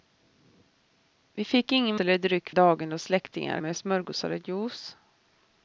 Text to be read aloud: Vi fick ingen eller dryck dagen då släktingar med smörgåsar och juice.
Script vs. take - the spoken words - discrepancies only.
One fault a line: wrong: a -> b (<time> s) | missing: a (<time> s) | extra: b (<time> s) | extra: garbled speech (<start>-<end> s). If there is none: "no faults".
no faults